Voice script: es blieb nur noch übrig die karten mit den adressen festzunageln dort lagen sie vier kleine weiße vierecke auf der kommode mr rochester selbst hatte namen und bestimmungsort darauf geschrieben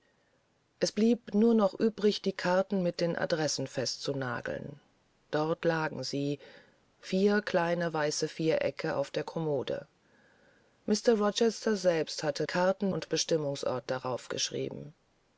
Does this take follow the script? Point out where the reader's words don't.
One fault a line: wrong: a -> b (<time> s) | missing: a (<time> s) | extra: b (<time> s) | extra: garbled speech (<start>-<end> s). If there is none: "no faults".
wrong: namen -> karten (12.4 s)